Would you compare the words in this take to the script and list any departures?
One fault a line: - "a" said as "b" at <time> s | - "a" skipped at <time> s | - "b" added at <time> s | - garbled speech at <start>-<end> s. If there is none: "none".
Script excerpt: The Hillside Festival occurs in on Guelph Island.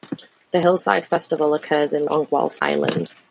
none